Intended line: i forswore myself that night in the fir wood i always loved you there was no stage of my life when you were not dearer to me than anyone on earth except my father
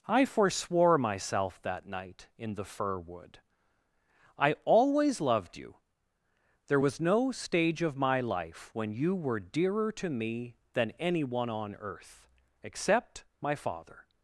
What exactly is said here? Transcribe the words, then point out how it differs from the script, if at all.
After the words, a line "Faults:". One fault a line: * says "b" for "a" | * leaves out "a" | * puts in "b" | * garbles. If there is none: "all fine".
i forswore myself that night in the fir wood i always loved you there was no stage of my life when you were dearer to me than anyone on earth except my father
Faults:
* leaves out "not"